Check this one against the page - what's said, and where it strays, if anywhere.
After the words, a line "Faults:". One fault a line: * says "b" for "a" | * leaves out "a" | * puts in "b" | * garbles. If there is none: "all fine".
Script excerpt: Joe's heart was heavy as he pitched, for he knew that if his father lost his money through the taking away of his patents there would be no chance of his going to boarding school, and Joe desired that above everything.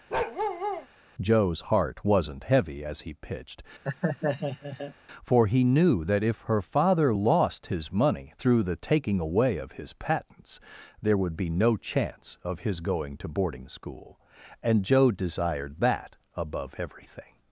Joe's heart wasn't heavy as he pitched, for he knew that if her father lost his money through the taking away of his patents there would be no chance of his going to boarding school, and Joe desired that above everything.
Faults:
* says "wasn't" for "was"
* says "her" for "his"